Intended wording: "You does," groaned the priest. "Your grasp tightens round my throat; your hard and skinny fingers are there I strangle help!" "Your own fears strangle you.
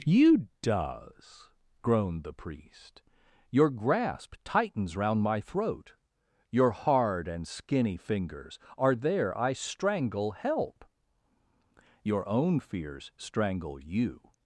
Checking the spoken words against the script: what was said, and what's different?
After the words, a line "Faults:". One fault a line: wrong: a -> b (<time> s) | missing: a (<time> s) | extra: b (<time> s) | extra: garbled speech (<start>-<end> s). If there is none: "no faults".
"You does," groaned the priest. "Your grasp tightens round my throat; your hard and skinny fingers are there I strangle help!" "Your own fears strangle you.
Faults:
no faults